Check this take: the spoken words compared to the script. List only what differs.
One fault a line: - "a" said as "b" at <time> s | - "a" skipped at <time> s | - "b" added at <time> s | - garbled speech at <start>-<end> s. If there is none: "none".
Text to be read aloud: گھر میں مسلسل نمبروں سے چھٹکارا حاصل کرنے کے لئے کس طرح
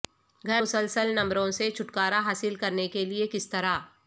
- "میں" skipped at 0.6 s